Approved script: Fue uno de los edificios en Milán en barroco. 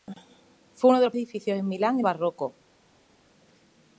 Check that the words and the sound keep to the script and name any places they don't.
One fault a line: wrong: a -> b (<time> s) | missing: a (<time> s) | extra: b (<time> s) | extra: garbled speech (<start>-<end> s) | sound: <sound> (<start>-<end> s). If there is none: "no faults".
no faults